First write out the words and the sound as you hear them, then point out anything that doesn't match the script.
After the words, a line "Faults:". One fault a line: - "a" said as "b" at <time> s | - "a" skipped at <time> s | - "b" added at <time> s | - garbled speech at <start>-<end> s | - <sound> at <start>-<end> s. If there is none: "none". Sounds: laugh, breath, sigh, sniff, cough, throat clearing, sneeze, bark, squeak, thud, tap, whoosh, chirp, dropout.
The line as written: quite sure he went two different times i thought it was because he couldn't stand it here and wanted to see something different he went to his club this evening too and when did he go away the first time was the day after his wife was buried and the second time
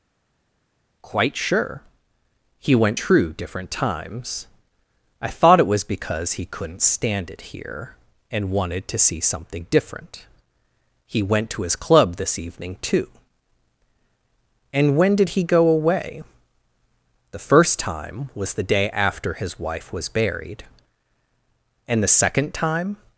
quite sure he went true different times i thought it was because he couldn't stand it here and wanted to see something different he went to his club this evening too and when did he go away the first time was the day after his wife was buried and the second time
Faults:
- "two" said as "true" at 3.0 s